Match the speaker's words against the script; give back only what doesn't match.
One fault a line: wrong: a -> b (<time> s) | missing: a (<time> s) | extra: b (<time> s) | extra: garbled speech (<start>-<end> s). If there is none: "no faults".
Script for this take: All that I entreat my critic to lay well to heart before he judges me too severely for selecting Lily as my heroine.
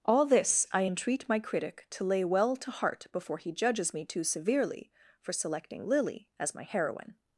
wrong: that -> this (0.2 s)